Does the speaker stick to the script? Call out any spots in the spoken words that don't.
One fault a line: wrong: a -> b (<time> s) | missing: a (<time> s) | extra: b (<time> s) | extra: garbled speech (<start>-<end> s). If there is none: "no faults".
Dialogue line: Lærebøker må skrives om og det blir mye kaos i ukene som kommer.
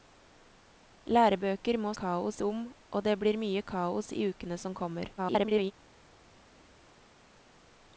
wrong: skrives -> kaos (2.0 s)
extra: garbled speech (5.2-5.7 s)